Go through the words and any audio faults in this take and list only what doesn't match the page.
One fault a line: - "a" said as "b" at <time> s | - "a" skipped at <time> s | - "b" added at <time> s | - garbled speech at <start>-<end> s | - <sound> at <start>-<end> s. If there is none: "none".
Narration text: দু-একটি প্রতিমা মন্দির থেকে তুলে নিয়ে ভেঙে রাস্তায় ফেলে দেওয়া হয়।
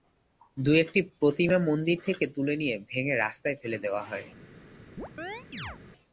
- chirp at 5.0-5.8 s